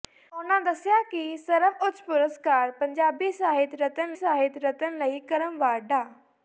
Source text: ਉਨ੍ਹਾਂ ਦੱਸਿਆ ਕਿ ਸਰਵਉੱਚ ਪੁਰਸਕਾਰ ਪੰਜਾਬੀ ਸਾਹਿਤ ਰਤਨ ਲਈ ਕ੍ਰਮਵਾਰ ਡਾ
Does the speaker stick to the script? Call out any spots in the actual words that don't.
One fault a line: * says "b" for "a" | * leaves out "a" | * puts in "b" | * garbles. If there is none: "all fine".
* puts in "ਸਾਹਿਤ ਰਤਨ"